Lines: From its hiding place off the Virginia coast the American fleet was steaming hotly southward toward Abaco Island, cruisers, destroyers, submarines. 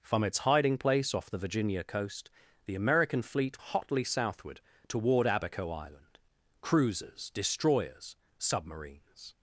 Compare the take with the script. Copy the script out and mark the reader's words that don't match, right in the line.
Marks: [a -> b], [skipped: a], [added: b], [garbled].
From its hiding place off the Virginia coast the American fleet [skipped: was steaming] hotly southward toward Abaco Island, cruisers, destroyers, submarines.